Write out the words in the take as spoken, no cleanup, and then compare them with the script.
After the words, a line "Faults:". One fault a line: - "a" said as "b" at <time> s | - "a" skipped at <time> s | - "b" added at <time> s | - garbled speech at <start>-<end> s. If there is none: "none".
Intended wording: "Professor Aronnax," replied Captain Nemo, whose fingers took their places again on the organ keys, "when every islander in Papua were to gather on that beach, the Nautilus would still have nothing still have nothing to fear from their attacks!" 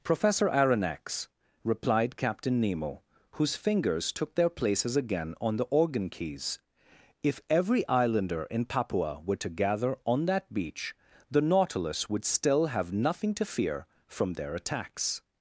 "Professor Aronnax," replied Captain Nemo, whose fingers took their places again on the organ keys, "if every islander in Papua were to gather on that beach, the Nautilus would still have nothing to fear from their attacks!"
Faults:
- "when" said as "if" at 7.2 s
- "still have nothing" skipped at 13.3 s